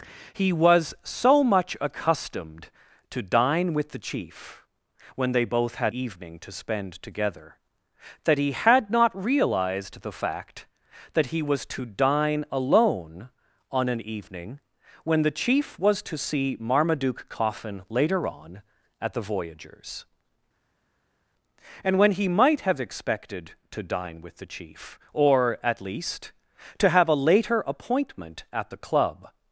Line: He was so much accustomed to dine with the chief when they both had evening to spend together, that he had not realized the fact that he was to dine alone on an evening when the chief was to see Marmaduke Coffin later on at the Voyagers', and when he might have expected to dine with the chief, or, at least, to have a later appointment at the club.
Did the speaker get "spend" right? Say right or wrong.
right